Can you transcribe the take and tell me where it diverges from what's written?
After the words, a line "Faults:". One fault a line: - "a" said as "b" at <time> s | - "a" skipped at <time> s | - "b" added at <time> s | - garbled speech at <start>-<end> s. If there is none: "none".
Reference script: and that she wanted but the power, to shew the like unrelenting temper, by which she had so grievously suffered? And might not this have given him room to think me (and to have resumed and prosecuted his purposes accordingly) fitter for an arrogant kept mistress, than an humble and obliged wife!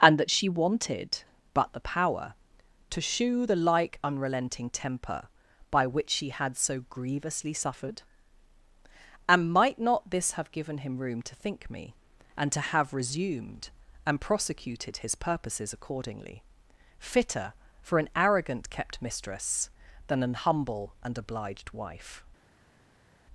and that she wanted but the power, to shew the like unrelenting temper, by which she had so grievously suffered? And might not this have given him room to think me (and to have resumed and prosecuted his purposes accordingly) fitter for an arrogant kept mistress, than an humble and obliged wife!
Faults:
none